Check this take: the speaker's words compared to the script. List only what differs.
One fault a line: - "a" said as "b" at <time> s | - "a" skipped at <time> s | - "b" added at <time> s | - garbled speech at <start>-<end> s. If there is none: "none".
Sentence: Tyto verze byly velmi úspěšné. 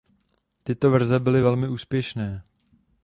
none